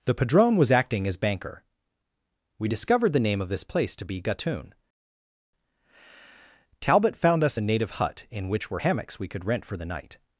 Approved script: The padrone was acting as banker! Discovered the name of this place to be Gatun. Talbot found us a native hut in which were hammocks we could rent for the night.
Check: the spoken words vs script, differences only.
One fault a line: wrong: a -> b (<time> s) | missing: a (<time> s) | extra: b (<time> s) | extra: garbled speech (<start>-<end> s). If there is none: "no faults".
extra: We (2.6 s)